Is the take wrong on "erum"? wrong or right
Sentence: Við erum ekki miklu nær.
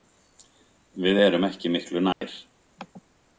right